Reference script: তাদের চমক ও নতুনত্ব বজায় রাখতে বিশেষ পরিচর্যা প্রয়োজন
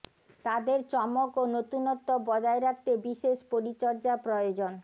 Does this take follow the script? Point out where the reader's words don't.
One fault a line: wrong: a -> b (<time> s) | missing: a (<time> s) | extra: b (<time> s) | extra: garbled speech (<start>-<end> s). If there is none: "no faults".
no faults